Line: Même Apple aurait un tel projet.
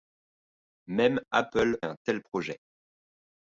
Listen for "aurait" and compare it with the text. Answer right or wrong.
wrong